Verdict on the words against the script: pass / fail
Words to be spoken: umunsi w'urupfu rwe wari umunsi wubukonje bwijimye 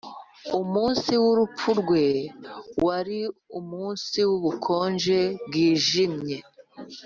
pass